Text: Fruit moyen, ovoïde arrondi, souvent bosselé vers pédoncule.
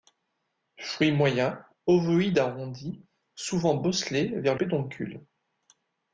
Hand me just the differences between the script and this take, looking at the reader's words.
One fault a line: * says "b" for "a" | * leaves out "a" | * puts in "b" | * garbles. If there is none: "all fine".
all fine